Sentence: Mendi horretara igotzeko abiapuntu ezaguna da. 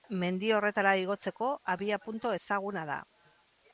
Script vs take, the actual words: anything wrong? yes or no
no